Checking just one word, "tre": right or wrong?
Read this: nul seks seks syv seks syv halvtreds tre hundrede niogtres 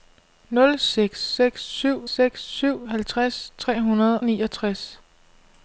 right